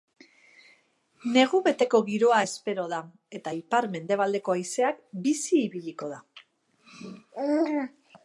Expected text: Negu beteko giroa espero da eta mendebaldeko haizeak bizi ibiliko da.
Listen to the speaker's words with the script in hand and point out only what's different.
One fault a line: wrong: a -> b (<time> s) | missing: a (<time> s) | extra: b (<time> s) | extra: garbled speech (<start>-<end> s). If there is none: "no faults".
extra: ipar (3.6 s)